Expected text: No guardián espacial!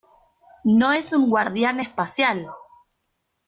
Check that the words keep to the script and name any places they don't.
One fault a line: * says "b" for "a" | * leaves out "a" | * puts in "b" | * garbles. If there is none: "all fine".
* puts in "es un"